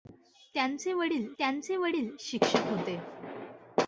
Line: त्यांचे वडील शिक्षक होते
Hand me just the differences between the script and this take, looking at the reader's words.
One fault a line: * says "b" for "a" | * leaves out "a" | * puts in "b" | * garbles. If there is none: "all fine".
* puts in "त्यांचे वडील"